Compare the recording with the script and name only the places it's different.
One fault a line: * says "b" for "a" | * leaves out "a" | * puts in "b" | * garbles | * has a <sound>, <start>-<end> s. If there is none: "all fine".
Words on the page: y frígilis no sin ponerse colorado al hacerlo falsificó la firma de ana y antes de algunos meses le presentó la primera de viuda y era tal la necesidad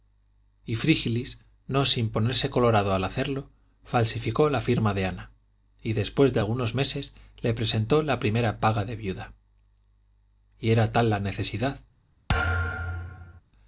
* says "después" for "antes"
* puts in "paga"
* has a thud, 12.3-13.4 s